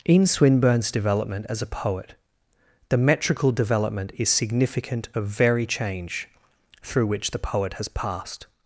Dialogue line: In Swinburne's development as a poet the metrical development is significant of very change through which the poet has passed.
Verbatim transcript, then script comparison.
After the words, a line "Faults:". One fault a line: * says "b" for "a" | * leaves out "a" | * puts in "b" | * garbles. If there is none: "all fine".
In Swinburne's development as a poet the metrical development is significant of very change through which the poet has passed.
Faults:
all fine